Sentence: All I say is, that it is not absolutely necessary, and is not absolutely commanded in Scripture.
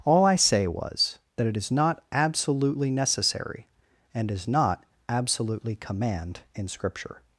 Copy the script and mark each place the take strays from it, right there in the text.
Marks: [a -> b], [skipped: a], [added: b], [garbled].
All I say [is, -> was] that it is not absolutely necessary, and is not absolutely [commanded -> command] in Scripture.